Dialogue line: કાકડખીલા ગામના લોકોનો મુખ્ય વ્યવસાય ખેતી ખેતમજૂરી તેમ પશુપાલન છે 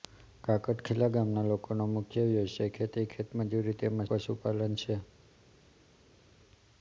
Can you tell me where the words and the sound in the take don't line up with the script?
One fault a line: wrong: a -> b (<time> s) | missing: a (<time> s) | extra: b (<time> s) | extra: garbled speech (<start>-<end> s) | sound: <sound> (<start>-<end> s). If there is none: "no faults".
no faults